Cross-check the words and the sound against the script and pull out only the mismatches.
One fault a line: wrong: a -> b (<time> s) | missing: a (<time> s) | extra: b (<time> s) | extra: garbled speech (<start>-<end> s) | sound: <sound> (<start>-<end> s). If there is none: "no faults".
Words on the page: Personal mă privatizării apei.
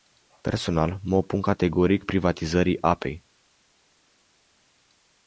extra: opun categoric (1.1 s)